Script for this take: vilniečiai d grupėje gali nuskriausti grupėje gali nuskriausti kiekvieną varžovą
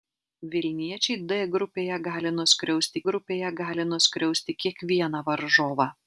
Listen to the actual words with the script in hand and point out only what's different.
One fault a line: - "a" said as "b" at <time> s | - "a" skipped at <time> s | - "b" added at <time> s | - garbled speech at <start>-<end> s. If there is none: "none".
none